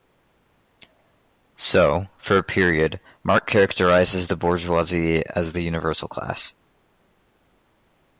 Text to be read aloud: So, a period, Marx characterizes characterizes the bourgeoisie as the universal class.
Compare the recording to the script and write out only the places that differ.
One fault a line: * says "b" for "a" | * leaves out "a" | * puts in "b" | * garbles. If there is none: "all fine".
* puts in "for"
* leaves out "characterizes"